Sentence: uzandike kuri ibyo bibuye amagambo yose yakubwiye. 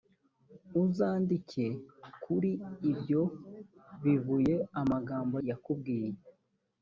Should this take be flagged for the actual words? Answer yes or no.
yes